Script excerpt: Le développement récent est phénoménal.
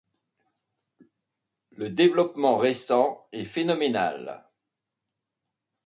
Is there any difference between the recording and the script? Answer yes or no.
no